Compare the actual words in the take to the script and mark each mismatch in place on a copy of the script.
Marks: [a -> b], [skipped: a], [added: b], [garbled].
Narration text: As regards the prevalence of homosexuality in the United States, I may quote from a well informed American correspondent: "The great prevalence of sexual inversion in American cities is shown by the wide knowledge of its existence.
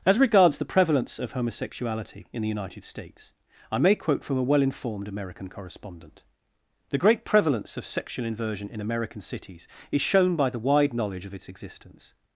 As regards the prevalence of homosexuality in the United States, I may quote from a well informed American correspondent: "The great prevalence of sexual inversion in American cities is shown by the wide knowledge of its existence.